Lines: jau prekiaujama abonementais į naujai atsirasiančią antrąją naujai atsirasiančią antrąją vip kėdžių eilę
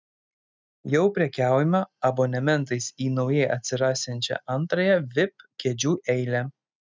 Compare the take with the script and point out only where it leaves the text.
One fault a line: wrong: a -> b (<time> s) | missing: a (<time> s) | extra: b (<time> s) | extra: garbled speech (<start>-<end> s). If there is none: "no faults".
missing: naujai atsirasiančią antrąją (5.0 s)